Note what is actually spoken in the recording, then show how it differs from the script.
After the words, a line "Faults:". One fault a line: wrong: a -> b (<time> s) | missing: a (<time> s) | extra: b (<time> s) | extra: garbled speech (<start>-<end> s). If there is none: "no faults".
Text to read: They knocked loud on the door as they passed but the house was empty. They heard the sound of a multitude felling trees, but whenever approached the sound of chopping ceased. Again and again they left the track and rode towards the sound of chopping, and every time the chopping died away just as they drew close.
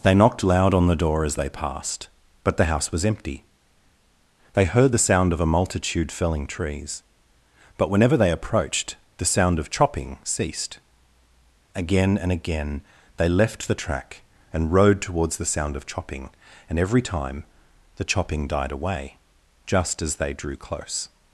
They knocked loud on the door as they passed but the house was empty. They heard the sound of a multitude felling trees, but whenever they approached the sound of chopping ceased. Again and again they left the track and rode towards the sound of chopping, and every time the chopping died away just as they drew close.
Faults:
extra: they (8.1 s)